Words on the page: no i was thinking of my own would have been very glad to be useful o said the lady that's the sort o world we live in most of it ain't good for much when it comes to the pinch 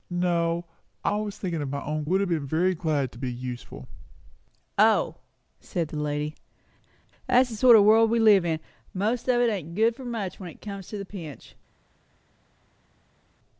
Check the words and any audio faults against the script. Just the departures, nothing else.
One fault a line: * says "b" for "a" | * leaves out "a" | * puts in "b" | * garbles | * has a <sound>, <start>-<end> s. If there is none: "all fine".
all fine